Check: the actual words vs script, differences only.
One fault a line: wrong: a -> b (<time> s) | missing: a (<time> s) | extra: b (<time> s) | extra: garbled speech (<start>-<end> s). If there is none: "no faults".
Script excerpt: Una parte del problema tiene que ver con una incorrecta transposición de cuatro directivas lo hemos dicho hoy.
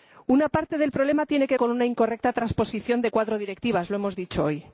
missing: ver (1.6 s)